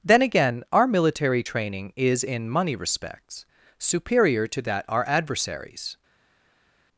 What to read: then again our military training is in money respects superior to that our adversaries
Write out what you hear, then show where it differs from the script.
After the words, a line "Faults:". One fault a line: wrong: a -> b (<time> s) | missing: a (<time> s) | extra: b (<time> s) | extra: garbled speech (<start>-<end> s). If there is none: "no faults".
then again our military training is in money respects superior to that our adversaries
Faults:
no faults